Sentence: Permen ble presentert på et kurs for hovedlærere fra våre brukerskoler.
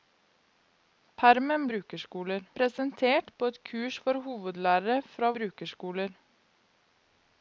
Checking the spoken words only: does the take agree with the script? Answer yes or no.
no